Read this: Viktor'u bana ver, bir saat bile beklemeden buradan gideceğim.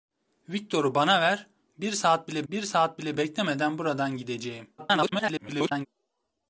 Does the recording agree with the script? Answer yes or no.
no